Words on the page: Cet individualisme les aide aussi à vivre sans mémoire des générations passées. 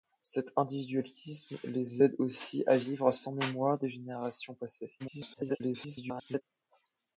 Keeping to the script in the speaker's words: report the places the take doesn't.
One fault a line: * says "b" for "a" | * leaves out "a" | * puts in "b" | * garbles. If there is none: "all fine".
* garbles